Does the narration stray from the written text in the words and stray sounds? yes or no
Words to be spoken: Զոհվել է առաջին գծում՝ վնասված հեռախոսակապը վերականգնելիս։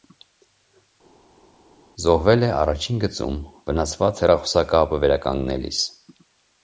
no